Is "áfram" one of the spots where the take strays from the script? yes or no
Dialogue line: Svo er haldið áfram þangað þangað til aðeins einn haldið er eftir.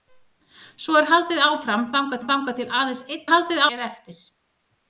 no